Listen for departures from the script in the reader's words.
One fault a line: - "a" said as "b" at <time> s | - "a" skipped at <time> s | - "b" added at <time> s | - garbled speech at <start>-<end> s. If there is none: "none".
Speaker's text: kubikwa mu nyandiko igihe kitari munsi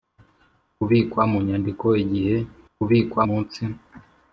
- "kitari" said as "kubikwa" at 2.7 s